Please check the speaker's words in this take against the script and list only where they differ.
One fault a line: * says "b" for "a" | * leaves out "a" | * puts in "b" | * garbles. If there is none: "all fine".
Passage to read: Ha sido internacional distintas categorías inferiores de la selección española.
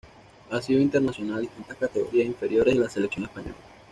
all fine